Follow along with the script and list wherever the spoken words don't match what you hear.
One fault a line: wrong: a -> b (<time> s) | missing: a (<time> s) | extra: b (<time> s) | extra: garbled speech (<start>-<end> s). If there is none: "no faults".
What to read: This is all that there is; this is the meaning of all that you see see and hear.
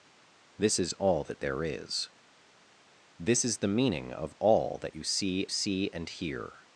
no faults